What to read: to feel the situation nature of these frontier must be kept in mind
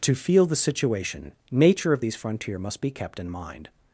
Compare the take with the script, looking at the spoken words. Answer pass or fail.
pass